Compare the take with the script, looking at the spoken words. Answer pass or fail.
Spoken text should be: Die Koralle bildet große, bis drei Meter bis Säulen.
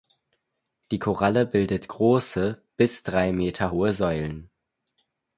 fail